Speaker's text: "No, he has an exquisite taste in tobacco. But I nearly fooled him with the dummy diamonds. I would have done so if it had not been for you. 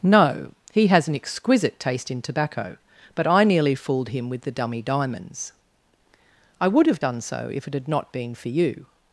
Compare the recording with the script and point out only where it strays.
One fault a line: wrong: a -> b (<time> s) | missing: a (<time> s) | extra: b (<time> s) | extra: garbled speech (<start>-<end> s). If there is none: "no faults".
no faults